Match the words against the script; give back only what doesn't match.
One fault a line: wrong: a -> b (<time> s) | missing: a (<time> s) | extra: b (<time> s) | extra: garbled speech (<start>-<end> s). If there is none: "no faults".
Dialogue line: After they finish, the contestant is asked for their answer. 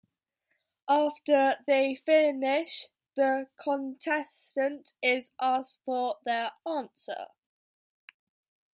no faults